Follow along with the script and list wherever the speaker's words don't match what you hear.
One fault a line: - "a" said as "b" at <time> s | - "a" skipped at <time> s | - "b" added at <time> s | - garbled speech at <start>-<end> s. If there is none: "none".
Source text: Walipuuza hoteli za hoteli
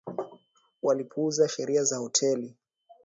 - "hoteli" said as "sheria" at 1.5 s